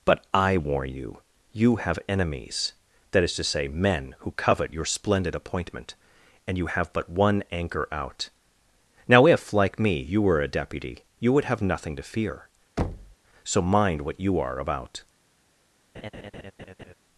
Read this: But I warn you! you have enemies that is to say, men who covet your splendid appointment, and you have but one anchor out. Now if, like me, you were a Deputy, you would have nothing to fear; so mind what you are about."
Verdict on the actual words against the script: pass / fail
pass